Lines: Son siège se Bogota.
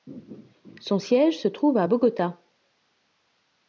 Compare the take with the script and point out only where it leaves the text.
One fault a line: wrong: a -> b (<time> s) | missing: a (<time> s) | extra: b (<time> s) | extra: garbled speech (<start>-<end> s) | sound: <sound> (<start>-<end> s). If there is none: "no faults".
extra: trouve à (1.5 s)